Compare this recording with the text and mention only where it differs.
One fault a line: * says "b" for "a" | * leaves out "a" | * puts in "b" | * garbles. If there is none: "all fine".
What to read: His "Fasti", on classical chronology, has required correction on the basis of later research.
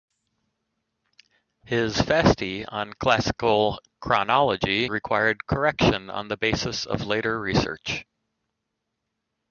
* leaves out "has"